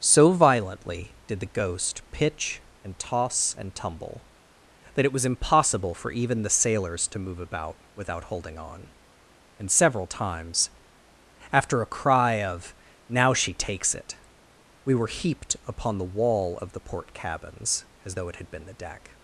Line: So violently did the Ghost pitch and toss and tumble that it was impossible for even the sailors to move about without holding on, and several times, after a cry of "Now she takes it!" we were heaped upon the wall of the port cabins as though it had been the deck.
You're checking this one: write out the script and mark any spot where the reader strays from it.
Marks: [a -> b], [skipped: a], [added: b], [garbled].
So violently did the Ghost pitch and toss and tumble that it was impossible for even the sailors to move about without holding on, and several times, after a cry of "Now she takes it!" we were heaped upon the wall of the port cabins as though it had been the deck.